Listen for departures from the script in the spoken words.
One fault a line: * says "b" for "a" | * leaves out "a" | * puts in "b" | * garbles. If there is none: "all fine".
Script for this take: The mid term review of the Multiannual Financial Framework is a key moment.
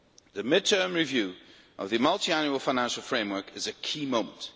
all fine